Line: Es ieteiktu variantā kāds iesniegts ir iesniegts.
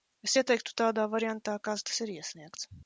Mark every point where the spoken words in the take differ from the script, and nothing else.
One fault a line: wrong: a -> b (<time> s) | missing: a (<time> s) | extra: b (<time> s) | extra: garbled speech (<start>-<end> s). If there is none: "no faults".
extra: tādā (0.8 s)
wrong: iesniegts -> tas (1.9 s)